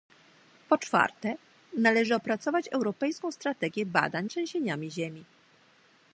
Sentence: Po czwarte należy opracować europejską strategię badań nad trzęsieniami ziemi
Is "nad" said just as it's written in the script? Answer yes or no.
no